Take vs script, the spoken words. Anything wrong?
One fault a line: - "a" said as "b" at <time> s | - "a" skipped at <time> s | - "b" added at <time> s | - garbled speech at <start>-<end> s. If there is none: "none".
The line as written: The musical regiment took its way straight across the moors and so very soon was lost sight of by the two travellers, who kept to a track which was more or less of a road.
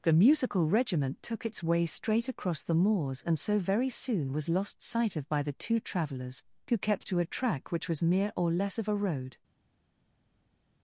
- "more" said as "mere" at 8.0 s